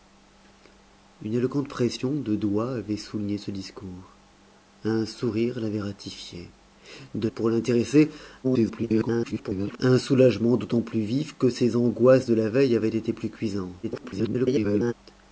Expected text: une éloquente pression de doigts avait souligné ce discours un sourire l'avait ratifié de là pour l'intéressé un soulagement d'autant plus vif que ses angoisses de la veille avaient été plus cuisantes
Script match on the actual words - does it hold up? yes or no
no